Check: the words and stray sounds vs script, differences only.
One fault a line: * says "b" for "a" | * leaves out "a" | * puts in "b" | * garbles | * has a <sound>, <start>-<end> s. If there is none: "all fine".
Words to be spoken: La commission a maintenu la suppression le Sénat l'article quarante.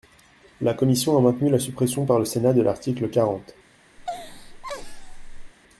* puts in "par"
* puts in "de"
* has a laugh, 4.0-5.5 s